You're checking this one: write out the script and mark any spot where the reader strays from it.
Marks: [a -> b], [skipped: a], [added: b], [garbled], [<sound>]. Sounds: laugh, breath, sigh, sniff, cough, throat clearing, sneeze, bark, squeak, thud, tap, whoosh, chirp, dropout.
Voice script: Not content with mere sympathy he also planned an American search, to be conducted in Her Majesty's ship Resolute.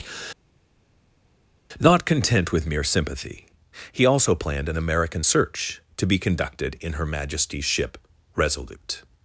Not content with mere sympathy he also planned an American search, to be conducted in Her Majesty's ship Resolute.